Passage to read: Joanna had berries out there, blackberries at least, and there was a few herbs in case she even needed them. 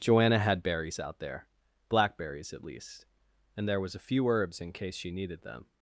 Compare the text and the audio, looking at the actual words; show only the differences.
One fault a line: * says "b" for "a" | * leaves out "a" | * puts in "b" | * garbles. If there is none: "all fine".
* leaves out "even"